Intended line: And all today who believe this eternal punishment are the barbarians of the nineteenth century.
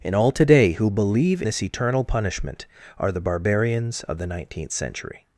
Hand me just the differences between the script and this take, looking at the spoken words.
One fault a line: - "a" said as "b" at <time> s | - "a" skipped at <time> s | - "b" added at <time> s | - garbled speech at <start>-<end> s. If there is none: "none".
none